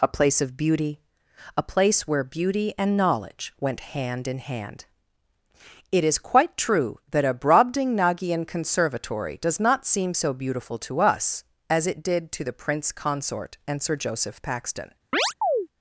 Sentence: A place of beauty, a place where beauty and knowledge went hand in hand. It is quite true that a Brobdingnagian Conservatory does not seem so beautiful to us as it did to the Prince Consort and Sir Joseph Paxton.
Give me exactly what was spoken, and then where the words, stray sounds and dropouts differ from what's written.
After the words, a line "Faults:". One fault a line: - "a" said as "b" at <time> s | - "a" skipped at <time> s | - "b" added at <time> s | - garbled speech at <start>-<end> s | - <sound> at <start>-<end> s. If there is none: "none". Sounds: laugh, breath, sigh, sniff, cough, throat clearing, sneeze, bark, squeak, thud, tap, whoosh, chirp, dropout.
A place of beauty, a place where beauty and knowledge went hand in hand. It is quite true that a Brobdingnagian Conservatory does not seem so beautiful to us as it did to the Prince Consort and Sir Joseph Paxton.
Faults:
- chirp at 15.1-15.7 s